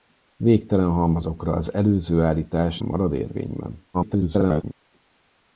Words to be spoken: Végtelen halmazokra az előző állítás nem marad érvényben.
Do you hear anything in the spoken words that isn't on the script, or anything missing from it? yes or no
yes